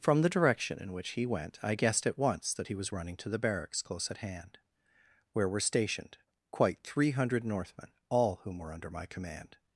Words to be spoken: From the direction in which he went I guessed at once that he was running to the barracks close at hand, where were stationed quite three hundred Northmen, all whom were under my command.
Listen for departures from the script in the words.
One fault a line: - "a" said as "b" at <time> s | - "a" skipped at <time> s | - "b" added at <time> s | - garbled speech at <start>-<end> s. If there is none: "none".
none